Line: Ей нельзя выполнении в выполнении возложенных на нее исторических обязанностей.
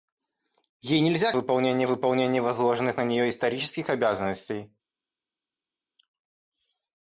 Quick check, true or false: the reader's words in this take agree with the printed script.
true